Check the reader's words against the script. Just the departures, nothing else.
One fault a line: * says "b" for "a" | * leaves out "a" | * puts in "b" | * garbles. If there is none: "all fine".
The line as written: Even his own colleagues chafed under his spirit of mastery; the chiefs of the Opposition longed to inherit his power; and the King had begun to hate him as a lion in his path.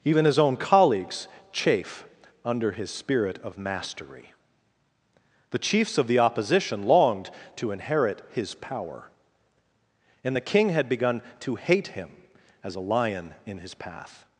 * says "chafe" for "chafed"